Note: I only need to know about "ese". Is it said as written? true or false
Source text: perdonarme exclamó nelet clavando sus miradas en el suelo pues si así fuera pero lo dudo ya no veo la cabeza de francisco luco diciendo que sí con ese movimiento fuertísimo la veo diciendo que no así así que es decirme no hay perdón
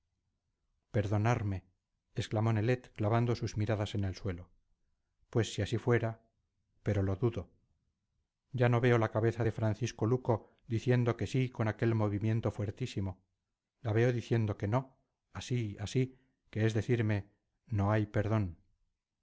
false